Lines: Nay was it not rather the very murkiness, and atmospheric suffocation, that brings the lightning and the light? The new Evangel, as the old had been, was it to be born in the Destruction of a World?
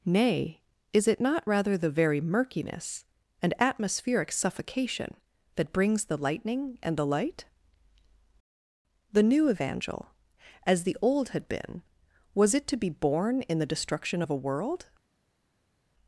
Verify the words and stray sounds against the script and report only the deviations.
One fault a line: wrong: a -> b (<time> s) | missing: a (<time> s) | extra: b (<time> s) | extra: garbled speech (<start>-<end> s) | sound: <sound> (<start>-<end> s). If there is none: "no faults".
wrong: was -> is (0.9 s)